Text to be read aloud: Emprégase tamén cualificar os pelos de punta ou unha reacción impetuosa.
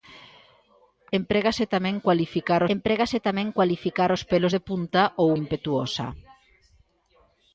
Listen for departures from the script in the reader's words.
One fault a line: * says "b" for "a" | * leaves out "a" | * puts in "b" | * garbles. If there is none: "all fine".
* puts in "emprégase tamén cualificar"
* leaves out "unha reacción"